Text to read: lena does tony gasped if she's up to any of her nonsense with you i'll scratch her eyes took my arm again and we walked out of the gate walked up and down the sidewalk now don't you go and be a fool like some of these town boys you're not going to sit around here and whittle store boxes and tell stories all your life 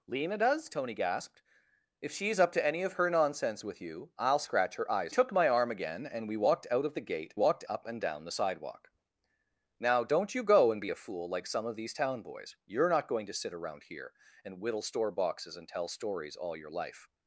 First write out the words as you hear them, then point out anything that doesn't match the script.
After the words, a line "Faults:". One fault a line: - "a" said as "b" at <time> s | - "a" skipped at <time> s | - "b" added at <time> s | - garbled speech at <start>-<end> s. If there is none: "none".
lena does tony gasped if she's up to any of her nonsense with you i'll scratch her eyes took my arm again and we walked out of the gate walked up and down the sidewalk now don't you go and be a fool like some of these town boys you're not going to sit around here and whittle store boxes and tell stories all your life
Faults:
none